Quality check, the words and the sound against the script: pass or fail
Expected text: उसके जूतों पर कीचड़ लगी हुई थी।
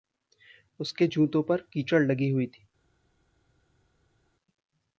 pass